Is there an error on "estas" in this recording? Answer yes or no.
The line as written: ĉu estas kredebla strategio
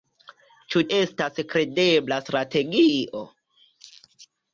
no